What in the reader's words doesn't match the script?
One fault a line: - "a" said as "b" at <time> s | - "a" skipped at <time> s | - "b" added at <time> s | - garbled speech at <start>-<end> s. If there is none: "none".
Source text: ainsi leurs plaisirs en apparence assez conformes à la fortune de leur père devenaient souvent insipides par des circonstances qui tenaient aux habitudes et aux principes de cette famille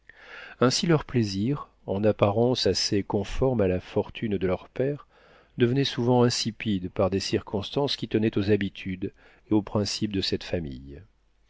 none